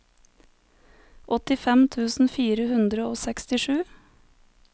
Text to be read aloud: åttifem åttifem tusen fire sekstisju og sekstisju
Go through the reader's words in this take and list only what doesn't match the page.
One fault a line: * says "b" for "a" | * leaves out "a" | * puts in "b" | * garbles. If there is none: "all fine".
* leaves out "åttifem"
* says "hundre" for "sekstisju"